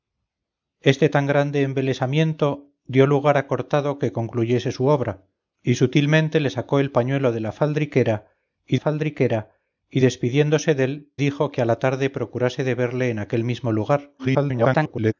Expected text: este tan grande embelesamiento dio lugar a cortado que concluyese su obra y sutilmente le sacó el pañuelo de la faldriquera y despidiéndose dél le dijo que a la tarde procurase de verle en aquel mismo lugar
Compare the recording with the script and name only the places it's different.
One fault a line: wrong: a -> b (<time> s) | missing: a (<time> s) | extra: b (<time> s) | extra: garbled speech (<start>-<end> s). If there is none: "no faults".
extra: faldriquera y (8.8 s)
missing: le (11.1 s)
extra: garbled speech (14.2-15.1 s)